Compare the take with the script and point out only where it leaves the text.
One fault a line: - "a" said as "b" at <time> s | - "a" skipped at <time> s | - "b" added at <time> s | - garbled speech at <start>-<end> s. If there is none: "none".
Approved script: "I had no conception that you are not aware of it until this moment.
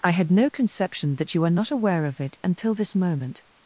none